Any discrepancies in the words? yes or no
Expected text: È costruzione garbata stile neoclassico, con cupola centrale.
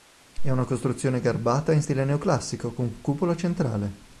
yes